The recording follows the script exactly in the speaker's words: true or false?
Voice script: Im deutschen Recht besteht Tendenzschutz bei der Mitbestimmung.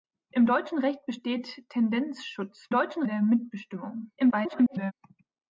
false